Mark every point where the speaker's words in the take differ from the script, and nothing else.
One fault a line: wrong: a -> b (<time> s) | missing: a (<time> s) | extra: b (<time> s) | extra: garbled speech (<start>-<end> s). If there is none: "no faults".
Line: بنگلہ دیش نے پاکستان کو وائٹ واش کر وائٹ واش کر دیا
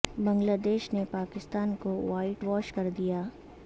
missing: وائٹ واش کر (2.9 s)